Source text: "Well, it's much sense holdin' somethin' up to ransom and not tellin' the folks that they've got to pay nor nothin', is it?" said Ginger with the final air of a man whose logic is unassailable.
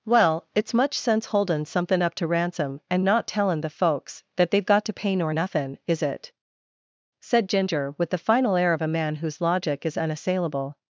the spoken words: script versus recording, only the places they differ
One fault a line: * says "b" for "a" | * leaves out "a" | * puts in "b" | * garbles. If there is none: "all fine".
all fine